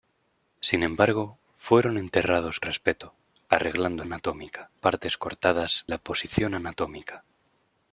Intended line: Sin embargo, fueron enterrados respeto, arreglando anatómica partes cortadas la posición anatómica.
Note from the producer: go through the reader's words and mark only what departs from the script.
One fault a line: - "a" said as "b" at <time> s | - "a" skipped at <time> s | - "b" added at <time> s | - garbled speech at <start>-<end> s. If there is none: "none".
none